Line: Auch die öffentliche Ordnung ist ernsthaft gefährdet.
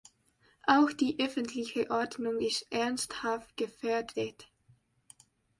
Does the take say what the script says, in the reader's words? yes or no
yes